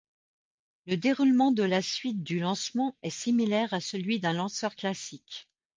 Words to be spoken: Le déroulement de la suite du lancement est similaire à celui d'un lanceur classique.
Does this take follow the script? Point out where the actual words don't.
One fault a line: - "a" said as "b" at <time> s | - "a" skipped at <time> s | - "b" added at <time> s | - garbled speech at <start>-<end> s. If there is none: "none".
none